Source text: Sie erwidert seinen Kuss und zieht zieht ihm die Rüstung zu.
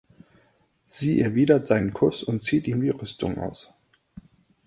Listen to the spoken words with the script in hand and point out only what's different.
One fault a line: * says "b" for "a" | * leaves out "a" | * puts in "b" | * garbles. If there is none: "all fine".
* leaves out "zieht"
* says "aus" for "zu"